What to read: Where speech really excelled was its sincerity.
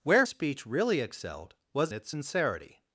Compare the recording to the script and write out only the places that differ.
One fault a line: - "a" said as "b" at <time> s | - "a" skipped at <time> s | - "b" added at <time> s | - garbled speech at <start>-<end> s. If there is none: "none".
none